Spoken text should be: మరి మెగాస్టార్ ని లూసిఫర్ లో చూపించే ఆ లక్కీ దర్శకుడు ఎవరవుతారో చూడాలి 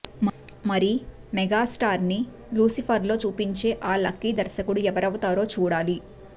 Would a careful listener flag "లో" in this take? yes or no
no